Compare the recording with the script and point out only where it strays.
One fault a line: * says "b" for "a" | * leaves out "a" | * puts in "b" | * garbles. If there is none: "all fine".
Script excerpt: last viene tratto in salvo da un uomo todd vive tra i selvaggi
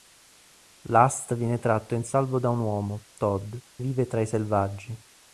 all fine